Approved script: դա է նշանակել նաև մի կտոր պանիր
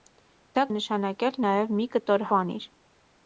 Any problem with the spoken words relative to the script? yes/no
no